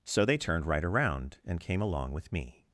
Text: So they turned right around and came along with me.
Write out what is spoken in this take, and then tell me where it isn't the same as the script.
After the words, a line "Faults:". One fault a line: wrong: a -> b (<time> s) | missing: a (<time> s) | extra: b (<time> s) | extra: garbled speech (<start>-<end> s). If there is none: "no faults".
So they turned right around and came along with me.
Faults:
no faults